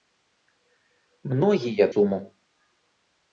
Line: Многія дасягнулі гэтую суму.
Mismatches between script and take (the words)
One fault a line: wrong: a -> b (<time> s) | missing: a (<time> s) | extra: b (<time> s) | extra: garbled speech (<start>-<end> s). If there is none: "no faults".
missing: дасягнулі гэтую (1.9 s)